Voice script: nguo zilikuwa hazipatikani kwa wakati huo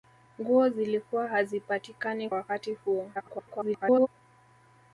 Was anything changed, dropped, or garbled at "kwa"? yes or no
yes